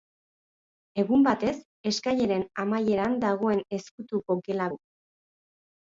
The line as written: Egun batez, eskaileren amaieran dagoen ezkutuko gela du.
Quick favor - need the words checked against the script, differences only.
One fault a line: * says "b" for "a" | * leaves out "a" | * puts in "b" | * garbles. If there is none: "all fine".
all fine